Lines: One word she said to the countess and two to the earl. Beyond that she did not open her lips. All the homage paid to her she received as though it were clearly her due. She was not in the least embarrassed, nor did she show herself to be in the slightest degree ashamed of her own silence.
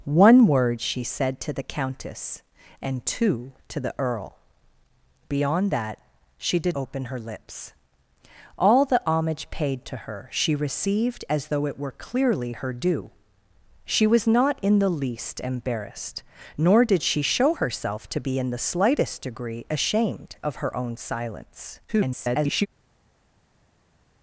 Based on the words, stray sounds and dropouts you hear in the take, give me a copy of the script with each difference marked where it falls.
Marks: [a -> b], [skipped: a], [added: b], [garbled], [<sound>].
One word she said to the countess and two to the earl. Beyond that she did [skipped: not] open her lips. All the homage paid to her she received as though it were clearly her due. She was not in the least embarrassed, nor did she show herself to be in the slightest degree ashamed of her own silence. [garbled]